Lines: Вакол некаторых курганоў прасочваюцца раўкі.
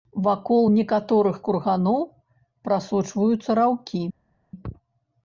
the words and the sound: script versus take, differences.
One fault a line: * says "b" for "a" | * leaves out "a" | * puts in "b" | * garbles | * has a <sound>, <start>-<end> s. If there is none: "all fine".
all fine